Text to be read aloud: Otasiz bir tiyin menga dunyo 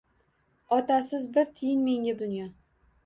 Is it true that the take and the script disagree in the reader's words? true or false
false